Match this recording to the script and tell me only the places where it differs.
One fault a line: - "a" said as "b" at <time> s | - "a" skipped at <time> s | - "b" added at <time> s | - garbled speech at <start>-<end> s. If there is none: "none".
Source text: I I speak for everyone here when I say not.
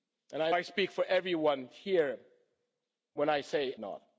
none